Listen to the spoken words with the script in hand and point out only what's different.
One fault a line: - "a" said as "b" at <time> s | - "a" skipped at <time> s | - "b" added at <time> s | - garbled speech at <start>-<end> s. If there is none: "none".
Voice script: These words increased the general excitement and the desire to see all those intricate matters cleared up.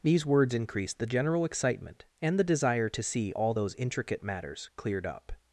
none